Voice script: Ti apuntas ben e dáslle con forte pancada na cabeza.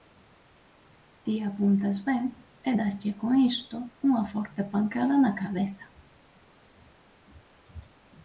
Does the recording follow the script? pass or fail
fail